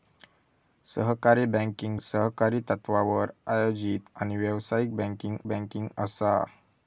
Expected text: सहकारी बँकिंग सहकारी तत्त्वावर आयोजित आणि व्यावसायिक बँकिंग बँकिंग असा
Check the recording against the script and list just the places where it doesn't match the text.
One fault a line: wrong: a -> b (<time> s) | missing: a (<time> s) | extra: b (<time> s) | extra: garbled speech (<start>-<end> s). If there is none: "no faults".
no faults